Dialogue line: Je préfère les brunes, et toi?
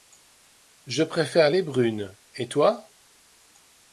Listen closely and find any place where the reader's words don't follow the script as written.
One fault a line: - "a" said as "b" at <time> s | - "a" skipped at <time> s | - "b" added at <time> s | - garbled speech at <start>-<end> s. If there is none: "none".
none